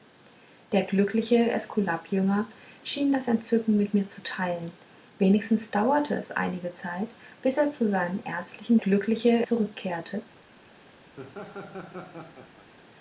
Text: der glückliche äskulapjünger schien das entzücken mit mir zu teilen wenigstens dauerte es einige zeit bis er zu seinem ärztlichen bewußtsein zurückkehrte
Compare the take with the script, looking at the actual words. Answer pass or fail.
fail